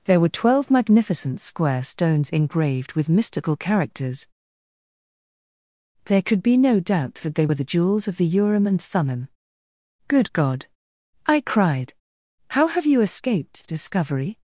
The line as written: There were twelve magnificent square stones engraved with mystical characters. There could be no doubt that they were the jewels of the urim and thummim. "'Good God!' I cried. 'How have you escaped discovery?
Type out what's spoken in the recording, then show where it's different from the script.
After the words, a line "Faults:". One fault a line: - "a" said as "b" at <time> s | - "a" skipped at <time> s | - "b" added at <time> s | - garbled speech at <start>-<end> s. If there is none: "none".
There were twelve magnificent square stones engraved with mystical characters. There could be no doubt that they were the jewels of the urim and thummim. "'Good God!' I cried. 'How have you escaped discovery?
Faults:
none